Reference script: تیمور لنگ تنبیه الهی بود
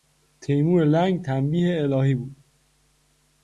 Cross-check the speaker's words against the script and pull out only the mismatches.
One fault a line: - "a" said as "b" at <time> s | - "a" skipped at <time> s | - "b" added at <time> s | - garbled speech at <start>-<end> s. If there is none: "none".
none